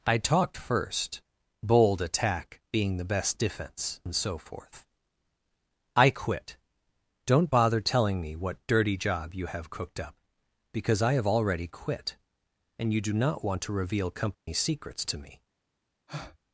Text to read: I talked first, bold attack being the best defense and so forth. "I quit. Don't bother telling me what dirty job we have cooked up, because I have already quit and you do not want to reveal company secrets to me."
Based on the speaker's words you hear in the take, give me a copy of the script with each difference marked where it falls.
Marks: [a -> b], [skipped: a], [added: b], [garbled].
I talked first, bold attack being the best defense and so forth. "I quit. Don't bother telling me what dirty job [we -> you] have cooked up, because I have already quit and you do not want to reveal company secrets to me."